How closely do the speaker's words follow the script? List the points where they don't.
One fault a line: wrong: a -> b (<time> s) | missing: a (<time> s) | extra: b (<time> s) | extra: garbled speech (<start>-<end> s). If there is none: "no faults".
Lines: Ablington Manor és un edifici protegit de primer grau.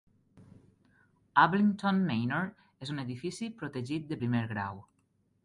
no faults